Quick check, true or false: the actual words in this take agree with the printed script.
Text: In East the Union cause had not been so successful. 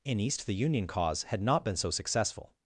true